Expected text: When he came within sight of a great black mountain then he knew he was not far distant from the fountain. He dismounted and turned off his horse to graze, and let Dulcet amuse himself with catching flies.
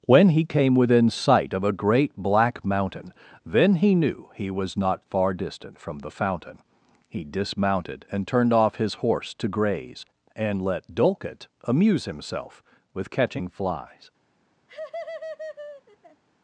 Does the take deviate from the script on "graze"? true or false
false